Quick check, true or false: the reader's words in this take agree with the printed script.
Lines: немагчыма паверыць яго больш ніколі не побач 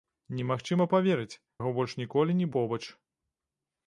true